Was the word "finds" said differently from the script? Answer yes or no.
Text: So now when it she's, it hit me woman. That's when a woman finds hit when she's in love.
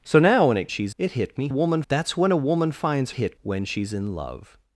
no